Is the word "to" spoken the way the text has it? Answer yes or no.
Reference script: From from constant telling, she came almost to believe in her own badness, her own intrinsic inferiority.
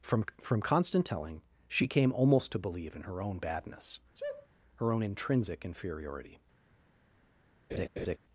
yes